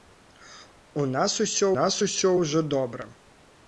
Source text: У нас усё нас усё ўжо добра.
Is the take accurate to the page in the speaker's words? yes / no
yes